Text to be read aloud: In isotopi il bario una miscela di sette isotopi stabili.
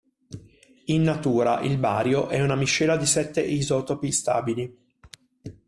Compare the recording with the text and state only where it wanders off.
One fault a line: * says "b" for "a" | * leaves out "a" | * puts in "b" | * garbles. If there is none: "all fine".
* says "natura" for "isotopi"
* puts in "è"